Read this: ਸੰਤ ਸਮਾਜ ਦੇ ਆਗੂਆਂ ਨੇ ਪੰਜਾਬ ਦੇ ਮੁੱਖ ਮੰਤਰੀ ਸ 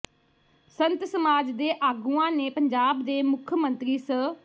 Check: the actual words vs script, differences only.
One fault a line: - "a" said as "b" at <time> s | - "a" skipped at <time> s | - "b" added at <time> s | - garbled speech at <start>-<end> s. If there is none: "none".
none